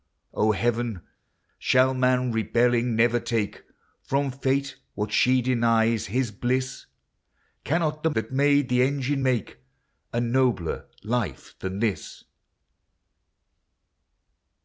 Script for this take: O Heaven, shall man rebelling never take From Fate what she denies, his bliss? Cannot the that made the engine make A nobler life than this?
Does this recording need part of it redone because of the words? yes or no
no